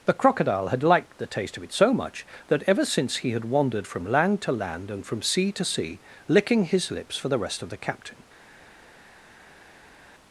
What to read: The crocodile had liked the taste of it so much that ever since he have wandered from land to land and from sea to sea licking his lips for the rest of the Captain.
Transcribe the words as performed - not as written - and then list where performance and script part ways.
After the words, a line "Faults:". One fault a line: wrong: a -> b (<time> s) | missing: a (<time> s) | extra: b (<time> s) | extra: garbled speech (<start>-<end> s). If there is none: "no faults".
The crocodile had liked the taste of it so much that ever since he had wandered from land to land and from sea to sea licking his lips for the rest of the Captain.
Faults:
wrong: have -> had (3.3 s)